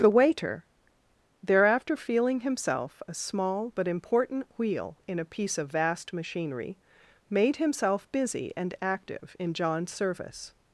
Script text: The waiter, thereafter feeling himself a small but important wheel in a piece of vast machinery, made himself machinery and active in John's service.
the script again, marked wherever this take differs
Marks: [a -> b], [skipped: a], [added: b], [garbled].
The waiter, thereafter feeling himself a small but important wheel in a piece of vast machinery, made himself [machinery -> busy] and active in John's service.